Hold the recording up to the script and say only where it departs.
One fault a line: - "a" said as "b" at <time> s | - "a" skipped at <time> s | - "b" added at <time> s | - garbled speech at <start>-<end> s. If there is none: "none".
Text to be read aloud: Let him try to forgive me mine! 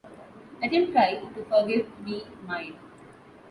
none